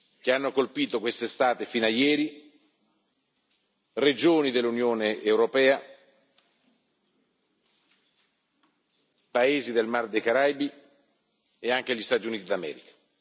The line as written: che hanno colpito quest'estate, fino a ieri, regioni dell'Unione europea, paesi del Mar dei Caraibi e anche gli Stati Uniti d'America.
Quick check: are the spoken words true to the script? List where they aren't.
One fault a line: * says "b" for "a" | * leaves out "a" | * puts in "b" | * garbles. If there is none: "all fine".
all fine